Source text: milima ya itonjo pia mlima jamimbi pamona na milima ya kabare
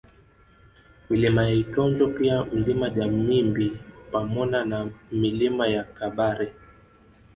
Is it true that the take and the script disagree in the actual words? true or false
false